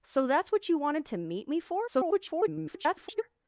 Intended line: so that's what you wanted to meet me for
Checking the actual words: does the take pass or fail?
fail